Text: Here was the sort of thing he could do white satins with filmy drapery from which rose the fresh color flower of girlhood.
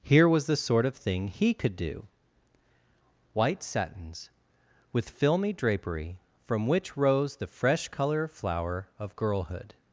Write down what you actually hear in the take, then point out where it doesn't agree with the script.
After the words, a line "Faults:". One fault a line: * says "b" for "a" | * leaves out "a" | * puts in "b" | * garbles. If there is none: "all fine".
Here was the sort of thing he could do white satins with filmy drapery from which rose the fresh color flower of girlhood.
Faults:
all fine